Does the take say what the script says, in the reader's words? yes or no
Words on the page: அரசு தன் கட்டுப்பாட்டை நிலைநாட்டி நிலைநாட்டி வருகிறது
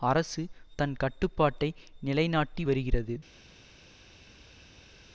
no